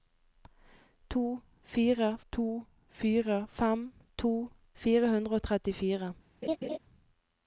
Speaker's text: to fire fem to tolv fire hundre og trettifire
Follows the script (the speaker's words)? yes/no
no